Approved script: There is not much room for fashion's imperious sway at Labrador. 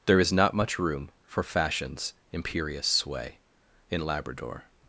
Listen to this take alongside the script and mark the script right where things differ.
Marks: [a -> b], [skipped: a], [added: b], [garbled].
There is not much room for fashion's imperious sway [at -> in] Labrador.